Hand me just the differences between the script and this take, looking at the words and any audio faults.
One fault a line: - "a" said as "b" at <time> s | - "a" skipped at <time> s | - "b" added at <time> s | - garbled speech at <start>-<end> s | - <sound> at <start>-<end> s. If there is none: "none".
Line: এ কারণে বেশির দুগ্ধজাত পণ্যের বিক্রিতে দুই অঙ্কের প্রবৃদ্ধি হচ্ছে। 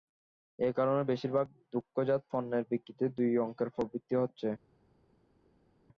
- "ভাগ" added at 1.3 s